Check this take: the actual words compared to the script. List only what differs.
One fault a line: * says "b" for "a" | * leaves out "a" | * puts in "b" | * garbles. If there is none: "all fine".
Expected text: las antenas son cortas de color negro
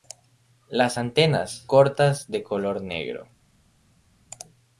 * leaves out "son"